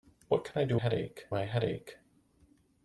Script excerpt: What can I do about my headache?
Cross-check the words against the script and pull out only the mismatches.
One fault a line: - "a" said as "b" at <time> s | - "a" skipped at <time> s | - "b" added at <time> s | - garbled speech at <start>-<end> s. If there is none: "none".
- "about" said as "headache" at 0.8 s